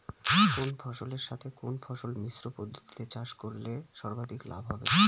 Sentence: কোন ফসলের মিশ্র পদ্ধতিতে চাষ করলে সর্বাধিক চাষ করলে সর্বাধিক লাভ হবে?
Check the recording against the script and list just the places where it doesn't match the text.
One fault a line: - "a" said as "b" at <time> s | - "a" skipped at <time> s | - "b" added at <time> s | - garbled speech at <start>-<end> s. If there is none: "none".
- "মিশ্র পদ্ধতিতে চাষ করলে সর্বাধিক" said as "সাথে কোন ফসল মিশ্র পদ্ধতিতে" at 1.3 s